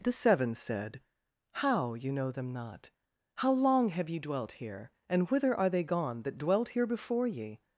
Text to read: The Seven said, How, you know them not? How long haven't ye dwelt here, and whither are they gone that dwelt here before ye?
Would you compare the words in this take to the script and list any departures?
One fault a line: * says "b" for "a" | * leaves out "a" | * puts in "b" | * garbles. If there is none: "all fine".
* says "have" for "haven't"